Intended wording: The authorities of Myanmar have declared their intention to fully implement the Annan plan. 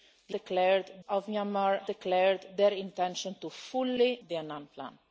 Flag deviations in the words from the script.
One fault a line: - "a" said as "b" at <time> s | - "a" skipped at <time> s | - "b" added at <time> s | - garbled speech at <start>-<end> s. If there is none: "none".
- "authorities" said as "declared" at 0.3 s
- "have" skipped at 1.8 s
- "implement" skipped at 4.1 s